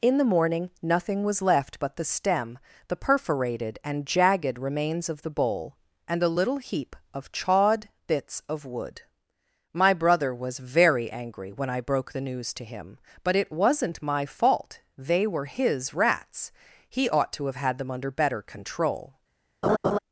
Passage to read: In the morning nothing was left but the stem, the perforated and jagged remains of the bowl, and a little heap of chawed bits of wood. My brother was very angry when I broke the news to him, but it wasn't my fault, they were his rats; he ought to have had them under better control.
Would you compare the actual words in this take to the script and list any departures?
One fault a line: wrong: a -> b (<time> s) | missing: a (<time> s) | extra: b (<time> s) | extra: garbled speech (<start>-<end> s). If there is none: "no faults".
no faults